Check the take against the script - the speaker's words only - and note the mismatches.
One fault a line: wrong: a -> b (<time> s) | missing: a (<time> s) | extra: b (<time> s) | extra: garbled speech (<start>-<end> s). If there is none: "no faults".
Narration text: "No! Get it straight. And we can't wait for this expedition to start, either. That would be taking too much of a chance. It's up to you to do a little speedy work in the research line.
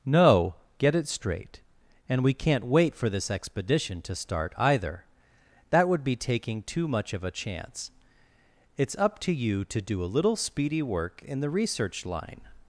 no faults